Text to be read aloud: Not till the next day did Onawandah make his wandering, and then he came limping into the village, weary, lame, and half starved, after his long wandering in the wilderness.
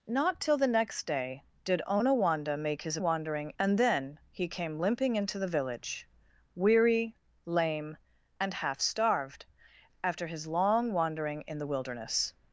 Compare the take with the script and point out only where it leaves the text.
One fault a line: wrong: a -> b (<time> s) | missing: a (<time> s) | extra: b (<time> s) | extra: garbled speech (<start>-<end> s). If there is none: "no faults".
no faults